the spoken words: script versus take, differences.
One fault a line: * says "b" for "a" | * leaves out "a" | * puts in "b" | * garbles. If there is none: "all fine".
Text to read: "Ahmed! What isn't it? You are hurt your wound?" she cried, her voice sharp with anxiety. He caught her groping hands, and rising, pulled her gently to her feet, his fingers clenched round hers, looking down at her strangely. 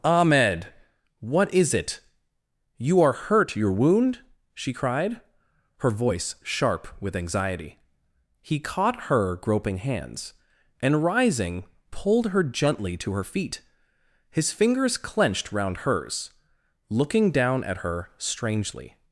* says "is" for "isn't"